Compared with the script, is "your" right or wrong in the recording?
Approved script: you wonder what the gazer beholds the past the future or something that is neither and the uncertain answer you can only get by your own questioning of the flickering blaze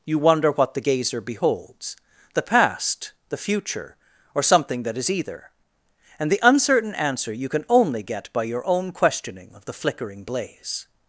right